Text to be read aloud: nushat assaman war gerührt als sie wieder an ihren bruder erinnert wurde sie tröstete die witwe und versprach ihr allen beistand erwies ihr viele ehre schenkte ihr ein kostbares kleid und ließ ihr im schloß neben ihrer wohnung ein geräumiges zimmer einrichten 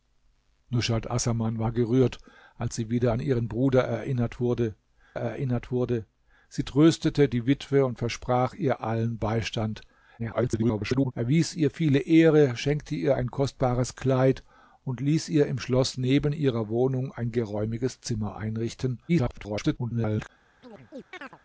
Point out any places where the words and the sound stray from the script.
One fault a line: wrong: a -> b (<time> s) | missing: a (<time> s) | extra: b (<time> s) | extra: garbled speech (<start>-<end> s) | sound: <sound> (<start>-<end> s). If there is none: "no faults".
extra: erinnert wurde (5.2 s)
extra: garbled speech (10.2-11.1 s)
extra: garbled speech (19.1-20.3 s)
sound: chirp (20.6-21.4 s)